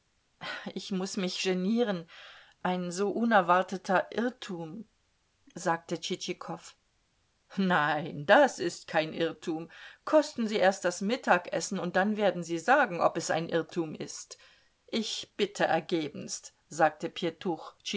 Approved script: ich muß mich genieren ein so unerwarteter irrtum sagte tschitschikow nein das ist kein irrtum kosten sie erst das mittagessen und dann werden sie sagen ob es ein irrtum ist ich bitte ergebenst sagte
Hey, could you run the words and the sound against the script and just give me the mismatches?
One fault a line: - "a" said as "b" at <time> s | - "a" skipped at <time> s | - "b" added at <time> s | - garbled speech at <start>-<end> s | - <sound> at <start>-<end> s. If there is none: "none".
none